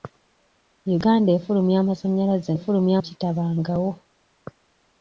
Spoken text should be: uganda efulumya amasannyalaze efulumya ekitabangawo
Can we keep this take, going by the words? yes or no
yes